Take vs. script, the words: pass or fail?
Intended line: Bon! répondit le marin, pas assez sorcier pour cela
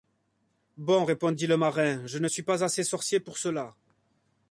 fail